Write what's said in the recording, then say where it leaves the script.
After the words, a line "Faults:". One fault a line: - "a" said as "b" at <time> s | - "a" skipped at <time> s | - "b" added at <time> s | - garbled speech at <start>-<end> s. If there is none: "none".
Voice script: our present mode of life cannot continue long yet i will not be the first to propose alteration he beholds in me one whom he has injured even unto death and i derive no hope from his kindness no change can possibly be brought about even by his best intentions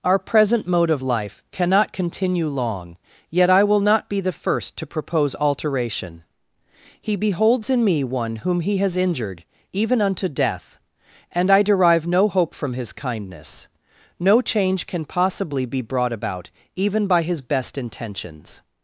our present mode of life cannot continue long yet i will not be the first to propose alteration he beholds in me one whom he has injured even unto death and i derive no hope from his kindness no change can possibly be brought about even by his best intentions
Faults:
none